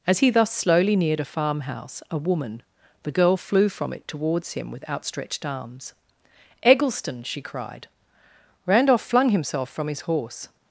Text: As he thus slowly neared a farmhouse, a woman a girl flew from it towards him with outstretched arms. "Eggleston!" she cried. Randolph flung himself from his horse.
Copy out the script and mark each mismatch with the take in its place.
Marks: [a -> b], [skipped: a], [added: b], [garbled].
As he thus slowly neared a farmhouse, a woman [a -> the] girl flew from it towards him with outstretched arms. "Eggleston!" she cried. Randolph flung himself from his horse.